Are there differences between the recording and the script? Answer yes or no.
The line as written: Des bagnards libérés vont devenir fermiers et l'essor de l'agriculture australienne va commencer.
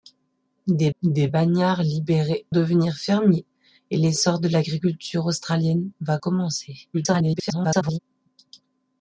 yes